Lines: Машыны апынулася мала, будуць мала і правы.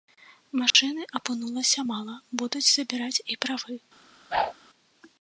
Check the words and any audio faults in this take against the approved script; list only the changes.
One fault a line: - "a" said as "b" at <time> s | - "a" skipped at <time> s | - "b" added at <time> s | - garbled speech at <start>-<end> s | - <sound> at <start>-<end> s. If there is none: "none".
- dropout at 0.7-0.7 s
- "мала" said as "забіраць" at 2.8 s
- whoosh at 4.3-4.5 s